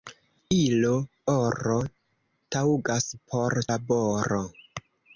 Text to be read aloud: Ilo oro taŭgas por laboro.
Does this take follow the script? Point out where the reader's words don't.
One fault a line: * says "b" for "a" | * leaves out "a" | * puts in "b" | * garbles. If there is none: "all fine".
all fine